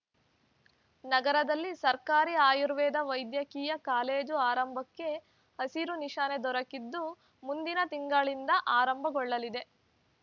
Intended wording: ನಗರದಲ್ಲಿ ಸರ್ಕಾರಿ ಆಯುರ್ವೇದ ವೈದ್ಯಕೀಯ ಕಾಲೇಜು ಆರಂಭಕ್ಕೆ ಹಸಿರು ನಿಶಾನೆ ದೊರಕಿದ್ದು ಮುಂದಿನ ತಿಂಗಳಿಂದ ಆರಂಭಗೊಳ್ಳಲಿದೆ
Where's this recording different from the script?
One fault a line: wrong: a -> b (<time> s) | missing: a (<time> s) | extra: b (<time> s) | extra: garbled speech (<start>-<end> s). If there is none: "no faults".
no faults